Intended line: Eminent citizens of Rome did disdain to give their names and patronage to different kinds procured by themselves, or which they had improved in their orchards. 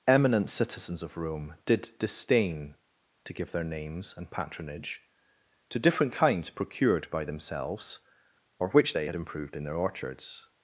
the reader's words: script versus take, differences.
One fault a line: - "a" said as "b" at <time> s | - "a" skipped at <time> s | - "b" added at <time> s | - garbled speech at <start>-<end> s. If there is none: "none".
none